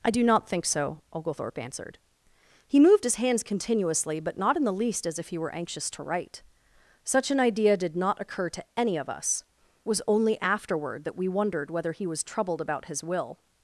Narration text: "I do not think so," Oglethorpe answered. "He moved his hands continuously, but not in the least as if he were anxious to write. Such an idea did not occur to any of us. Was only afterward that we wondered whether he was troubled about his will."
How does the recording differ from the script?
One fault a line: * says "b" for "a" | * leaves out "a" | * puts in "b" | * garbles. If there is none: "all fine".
all fine